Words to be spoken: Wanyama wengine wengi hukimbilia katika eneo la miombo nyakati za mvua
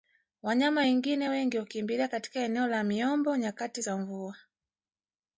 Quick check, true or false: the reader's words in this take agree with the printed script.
true